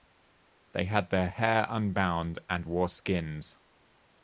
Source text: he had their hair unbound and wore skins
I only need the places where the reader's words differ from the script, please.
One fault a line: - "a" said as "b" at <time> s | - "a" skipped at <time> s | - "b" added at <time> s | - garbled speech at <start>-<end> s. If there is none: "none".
- "he" said as "they" at 0.7 s